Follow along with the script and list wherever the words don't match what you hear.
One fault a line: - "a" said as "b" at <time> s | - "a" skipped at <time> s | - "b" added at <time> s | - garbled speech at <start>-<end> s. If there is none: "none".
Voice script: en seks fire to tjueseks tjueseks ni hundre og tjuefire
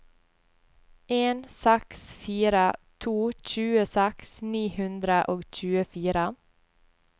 - "tjueseks" skipped at 4.3 s